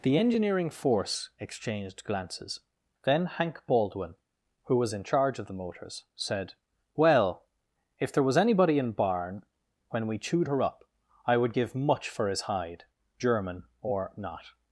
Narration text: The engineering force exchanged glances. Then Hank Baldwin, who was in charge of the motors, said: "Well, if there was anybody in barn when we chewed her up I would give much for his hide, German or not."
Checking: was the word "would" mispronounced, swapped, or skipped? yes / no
no